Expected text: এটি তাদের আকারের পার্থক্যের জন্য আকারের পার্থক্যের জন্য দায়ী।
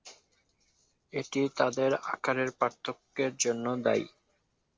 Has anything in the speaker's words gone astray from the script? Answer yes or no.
yes